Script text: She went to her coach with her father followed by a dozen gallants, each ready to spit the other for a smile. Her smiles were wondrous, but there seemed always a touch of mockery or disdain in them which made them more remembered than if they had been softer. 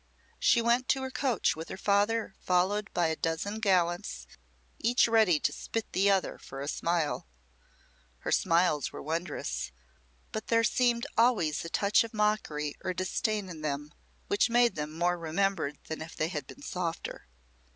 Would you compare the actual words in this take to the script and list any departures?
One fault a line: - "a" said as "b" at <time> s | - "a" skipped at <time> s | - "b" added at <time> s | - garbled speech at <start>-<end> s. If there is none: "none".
none